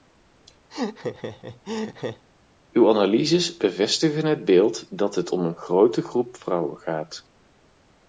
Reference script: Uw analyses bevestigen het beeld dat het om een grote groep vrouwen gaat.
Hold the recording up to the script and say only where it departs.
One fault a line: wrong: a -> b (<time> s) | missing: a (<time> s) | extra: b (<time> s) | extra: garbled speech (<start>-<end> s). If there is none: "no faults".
no faults